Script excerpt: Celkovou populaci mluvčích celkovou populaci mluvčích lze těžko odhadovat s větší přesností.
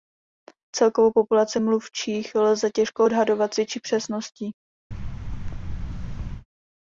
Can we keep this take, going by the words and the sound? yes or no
no